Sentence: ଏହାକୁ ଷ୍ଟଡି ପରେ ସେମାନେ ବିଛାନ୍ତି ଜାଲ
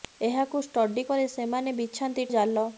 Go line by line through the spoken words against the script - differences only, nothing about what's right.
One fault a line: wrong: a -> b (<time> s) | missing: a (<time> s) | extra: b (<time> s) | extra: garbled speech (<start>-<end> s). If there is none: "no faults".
no faults